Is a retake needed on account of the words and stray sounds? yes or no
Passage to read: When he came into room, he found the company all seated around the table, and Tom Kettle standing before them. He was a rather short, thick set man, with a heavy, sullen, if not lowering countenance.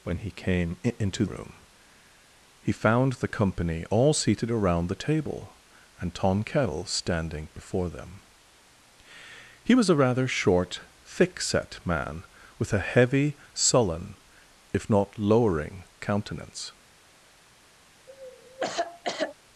yes